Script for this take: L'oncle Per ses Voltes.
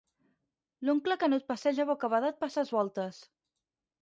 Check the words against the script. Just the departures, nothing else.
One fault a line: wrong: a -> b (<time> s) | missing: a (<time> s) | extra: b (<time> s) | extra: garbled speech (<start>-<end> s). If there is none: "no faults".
extra: Canut passeja bocabadat (1.2 s)